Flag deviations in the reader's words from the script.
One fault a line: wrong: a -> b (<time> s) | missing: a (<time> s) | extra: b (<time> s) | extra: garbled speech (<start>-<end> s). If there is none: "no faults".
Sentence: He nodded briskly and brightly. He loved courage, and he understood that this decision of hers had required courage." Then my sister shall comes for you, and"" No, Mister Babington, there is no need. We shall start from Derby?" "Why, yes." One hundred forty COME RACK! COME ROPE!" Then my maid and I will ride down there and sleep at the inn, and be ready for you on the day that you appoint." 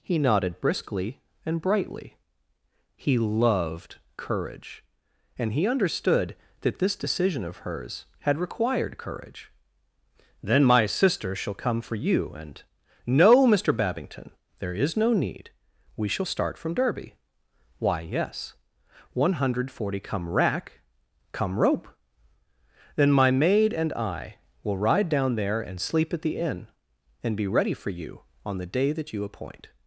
wrong: comes -> come (11.5 s)